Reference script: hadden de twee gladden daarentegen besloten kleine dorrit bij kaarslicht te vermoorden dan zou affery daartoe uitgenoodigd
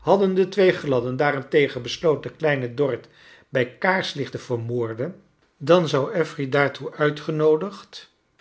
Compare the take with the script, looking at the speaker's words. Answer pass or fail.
pass